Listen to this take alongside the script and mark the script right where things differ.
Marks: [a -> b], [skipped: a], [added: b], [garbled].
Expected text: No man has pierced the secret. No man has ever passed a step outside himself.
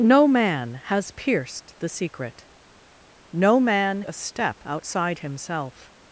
No man has pierced the secret. No man [skipped: has ever passed] a step outside himself.